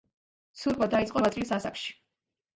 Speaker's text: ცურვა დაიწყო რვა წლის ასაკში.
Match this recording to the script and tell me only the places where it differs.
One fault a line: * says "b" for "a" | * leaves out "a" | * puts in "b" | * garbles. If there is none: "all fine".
all fine